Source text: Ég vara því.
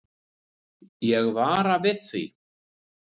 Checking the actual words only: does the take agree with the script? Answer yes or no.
no